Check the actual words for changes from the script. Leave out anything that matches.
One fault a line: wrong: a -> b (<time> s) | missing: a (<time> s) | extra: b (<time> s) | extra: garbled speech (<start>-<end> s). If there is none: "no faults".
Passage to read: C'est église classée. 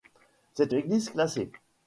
no faults